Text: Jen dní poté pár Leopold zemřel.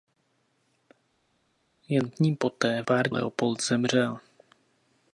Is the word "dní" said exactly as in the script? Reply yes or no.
yes